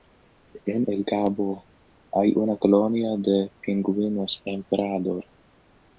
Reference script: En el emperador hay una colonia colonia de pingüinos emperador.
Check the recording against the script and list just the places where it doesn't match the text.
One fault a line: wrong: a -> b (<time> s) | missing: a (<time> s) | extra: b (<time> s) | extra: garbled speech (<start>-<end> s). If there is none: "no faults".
wrong: emperador -> cabo (1.0 s)
missing: colonia (3.1 s)